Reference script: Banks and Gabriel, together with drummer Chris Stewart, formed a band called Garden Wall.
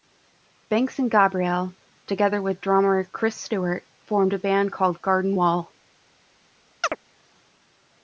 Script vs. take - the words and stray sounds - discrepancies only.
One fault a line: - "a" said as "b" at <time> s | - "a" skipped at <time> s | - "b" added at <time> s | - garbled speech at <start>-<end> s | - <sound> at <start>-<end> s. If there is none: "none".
- chirp at 6.8-7.0 s